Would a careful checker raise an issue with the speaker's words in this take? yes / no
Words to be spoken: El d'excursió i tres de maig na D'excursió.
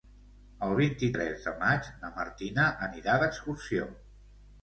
yes